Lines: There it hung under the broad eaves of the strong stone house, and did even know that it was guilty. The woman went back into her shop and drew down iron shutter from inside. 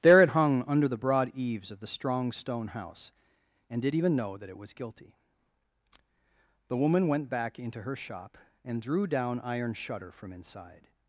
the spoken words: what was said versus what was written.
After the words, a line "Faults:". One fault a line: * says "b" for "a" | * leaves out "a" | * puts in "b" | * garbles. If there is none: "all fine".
There it hung under the broad eaves of the strong stone house, and did even know that it was guilty. The woman went back into her shop and drew down iron shutter from inside.
Faults:
all fine